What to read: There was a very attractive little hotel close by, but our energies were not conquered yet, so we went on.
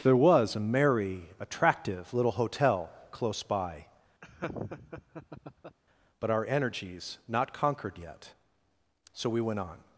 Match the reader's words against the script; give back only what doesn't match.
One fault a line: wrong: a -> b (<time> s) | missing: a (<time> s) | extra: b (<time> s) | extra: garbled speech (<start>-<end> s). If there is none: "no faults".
wrong: very -> merry (0.6 s)
missing: were (7.2 s)